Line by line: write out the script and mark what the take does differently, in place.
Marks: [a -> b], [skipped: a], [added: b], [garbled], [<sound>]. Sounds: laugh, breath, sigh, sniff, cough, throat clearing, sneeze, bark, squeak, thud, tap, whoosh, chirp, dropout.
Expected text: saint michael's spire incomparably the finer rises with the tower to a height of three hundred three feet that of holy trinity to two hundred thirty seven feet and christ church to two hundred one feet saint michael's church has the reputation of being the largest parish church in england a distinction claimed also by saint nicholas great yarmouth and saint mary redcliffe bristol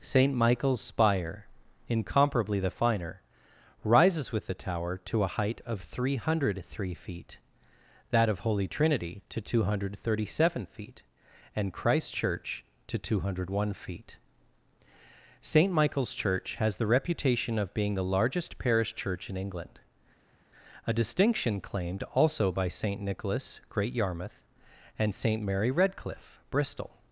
saint michael's spire incomparably the finer rises with the tower to a height of three hundred three feet that of holy trinity to two hundred thirty seven feet and christ church to two hundred one feet saint michael's church has the reputation of being the largest parish church in england a distinction claimed also by saint nicholas great yarmouth and saint mary redcliffe bristol